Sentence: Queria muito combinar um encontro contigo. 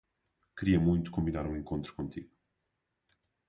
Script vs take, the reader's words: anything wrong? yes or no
no